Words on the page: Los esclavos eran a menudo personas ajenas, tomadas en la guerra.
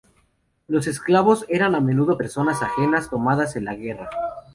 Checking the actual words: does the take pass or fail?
pass